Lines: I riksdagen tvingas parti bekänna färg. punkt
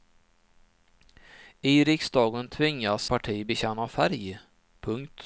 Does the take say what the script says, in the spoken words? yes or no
yes